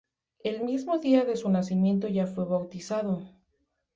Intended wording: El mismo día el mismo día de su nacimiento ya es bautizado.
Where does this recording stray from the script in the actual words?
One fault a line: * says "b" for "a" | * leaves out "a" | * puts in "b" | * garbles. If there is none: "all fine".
* leaves out "el mismo día"
* says "fue" for "es"